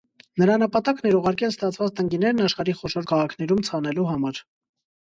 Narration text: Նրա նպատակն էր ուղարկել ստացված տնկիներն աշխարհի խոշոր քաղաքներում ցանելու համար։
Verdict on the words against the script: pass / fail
pass